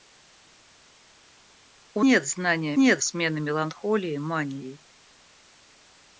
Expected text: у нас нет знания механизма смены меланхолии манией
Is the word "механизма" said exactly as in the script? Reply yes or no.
no